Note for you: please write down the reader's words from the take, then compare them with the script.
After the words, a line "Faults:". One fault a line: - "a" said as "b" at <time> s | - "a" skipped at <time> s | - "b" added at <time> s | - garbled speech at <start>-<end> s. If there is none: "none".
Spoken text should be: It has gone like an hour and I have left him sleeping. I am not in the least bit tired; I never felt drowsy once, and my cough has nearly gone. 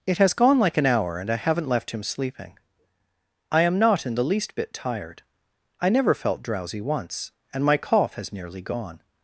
It has gone like an hour and I haven't left him sleeping. I am not in the least bit tired; I never felt drowsy once, and my cough has nearly gone.
Faults:
- "have" said as "haven't" at 1.4 s